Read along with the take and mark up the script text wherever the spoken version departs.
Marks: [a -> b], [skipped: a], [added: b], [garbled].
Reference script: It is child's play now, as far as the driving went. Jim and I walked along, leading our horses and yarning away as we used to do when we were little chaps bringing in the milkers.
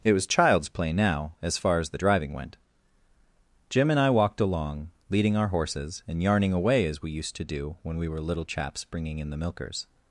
It [is -> was] child's play now, as far as the driving went. Jim and I walked along, leading our horses and yarning away as we used to do when we were little chaps bringing in the milkers.